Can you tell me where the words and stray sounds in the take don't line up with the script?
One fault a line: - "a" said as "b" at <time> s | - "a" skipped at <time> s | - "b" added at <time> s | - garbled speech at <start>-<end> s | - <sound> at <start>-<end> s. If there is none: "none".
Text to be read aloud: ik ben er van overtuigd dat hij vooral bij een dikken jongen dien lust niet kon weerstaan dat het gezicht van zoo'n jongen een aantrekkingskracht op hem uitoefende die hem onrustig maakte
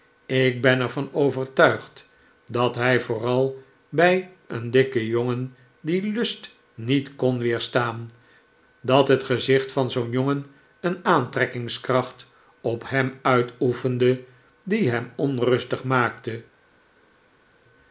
none